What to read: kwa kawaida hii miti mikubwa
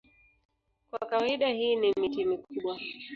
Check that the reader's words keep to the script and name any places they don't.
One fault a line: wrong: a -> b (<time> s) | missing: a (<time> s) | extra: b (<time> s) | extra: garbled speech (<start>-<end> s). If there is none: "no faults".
extra: ni (1.8 s)